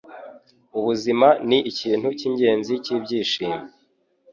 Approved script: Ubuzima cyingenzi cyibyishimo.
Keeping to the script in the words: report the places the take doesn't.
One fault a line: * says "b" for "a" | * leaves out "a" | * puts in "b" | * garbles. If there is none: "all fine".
* puts in "ni ikintu"